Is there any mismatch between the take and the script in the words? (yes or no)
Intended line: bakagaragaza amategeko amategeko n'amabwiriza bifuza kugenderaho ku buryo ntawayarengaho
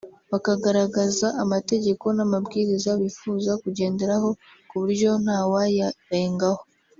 yes